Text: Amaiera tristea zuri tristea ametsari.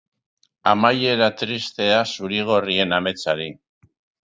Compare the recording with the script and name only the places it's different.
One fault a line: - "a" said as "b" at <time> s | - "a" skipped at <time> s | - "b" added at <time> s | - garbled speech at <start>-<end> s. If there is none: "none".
- "tristea" said as "gorrien" at 2.5 s